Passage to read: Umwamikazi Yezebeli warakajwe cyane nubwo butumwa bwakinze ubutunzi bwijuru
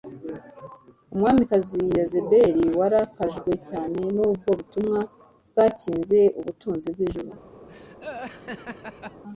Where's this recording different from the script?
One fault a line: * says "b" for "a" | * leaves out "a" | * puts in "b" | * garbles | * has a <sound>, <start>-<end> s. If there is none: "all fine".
* has a laugh, 7.7-9.2 s